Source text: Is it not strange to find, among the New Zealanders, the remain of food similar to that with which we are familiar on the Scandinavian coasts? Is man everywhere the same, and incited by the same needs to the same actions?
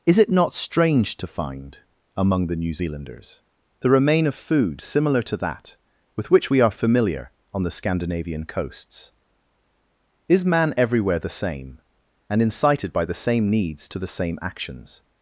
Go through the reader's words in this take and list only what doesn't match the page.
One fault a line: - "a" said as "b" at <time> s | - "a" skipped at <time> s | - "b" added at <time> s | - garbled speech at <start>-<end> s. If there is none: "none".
none